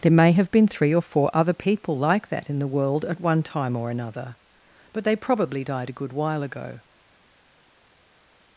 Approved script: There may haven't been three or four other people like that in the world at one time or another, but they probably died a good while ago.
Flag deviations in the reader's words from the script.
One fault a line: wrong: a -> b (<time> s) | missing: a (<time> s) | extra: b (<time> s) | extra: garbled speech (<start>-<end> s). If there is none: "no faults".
wrong: haven't -> have (0.3 s)